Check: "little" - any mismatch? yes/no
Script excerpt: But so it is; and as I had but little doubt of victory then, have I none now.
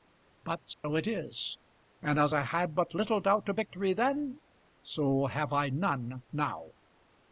no